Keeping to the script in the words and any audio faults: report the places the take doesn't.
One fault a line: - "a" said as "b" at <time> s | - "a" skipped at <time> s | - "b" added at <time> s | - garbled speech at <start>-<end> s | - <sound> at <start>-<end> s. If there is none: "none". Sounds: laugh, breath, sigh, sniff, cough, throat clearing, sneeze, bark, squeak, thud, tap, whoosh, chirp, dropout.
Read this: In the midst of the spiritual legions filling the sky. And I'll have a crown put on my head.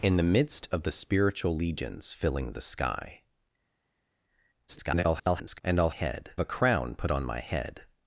- garbled speech at 4.7-5.6 s
- "have" said as "head" at 5.9 s